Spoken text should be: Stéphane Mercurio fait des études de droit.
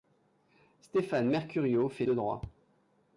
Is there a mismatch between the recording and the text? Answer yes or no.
yes